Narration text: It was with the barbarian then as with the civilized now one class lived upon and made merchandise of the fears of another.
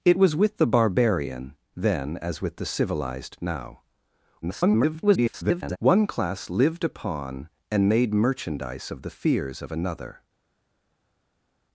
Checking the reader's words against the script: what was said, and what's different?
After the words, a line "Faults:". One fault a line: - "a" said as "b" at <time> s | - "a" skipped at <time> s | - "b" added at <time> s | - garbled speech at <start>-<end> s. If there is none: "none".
It was with the barbarian then as with the civilized now [garbled] one class lived upon and made merchandise of the fears of another.
Faults:
- garbled speech at 4.4-5.8 s